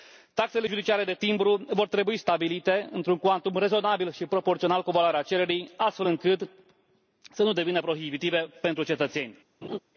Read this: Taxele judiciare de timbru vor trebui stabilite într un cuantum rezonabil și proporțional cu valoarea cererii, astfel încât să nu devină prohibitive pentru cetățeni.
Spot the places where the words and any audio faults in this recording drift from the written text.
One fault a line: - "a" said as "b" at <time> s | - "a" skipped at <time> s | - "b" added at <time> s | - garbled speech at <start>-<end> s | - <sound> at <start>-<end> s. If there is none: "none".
- laugh at 9.6-9.8 s